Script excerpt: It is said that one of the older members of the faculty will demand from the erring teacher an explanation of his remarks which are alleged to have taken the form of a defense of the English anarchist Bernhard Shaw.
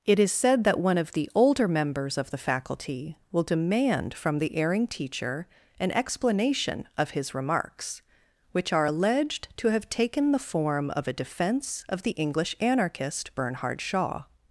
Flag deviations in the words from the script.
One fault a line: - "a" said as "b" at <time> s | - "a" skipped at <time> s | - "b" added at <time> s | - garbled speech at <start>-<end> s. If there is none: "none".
none